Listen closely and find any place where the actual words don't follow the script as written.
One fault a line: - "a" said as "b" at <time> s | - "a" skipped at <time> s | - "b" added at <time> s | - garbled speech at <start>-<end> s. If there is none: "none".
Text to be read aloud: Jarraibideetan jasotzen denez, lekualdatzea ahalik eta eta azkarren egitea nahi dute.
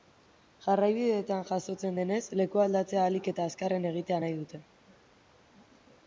- "eta" skipped at 3.5 s